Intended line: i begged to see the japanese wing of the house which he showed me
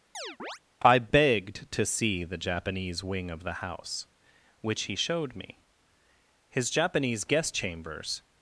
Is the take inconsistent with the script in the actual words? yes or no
yes